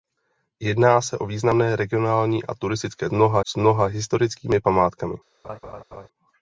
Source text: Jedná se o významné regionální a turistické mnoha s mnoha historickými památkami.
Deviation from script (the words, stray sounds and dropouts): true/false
true